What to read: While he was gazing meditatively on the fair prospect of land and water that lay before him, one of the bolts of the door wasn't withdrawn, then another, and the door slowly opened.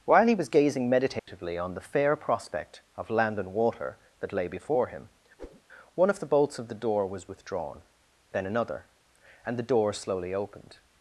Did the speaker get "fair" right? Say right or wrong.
right